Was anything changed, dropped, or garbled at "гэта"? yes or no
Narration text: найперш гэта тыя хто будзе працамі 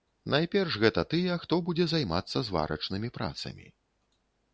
no